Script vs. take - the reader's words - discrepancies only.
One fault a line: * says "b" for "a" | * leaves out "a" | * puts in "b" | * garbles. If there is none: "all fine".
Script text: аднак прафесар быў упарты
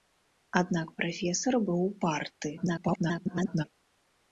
* garbles